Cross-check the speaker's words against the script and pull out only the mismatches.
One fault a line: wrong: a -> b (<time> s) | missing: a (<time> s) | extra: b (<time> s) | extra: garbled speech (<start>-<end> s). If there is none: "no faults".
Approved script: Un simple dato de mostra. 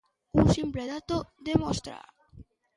no faults